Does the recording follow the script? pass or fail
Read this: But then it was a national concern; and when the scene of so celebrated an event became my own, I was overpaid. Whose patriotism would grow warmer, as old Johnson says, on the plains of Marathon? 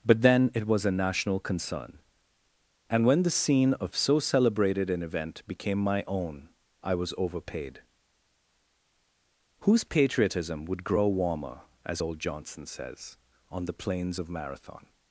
pass